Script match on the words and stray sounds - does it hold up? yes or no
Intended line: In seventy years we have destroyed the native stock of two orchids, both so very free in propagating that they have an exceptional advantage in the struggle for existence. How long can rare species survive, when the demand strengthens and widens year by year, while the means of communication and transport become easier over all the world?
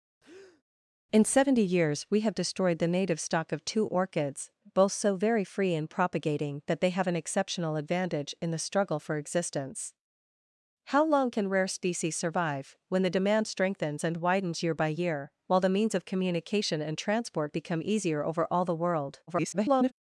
no